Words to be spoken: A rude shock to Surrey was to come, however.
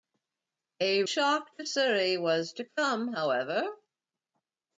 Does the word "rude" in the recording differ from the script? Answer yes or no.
yes